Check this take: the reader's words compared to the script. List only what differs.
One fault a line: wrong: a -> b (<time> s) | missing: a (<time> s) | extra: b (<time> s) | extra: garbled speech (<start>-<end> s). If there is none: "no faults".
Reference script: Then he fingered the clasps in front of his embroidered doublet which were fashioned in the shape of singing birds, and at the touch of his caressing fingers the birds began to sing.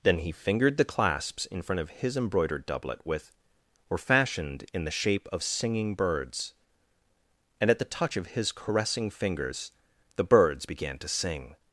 wrong: which -> with (3.0 s)